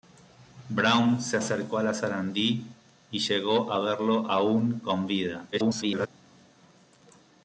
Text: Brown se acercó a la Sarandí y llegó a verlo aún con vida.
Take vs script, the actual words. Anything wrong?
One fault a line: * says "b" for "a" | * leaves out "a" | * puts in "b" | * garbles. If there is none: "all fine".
* garbles